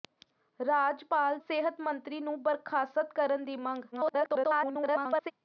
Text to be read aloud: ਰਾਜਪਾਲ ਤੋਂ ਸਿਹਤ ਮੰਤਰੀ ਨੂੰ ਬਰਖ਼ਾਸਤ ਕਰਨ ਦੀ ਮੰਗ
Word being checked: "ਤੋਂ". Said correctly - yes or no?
no